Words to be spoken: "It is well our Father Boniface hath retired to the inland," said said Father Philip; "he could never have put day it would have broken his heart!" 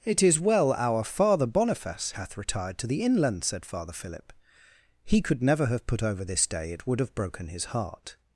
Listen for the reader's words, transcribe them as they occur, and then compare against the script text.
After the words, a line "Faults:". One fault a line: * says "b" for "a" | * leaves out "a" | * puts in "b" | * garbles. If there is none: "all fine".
"It is well our Father Boniface hath retired to the inland," said Father Philip; "he could never have put over this day it would have broken his heart!"
Faults:
* leaves out "said"
* puts in "over this"